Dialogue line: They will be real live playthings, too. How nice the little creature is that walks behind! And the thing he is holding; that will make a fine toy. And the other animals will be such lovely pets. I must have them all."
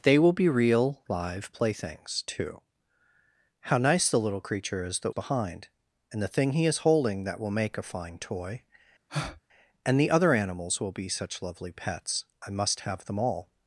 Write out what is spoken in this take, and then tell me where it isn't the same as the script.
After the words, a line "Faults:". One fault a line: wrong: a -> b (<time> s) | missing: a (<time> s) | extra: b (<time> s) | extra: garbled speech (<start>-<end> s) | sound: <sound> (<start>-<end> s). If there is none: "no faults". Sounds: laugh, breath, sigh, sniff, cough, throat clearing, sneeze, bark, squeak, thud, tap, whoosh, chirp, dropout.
They will be real live playthings, too. How nice the little creature is that behind! And the thing he is holding; that will make a fine toy. And the other animals will be such lovely pets. I must have them all."
Faults:
missing: walks (5.1 s)
sound: breath (9.1-9.4 s)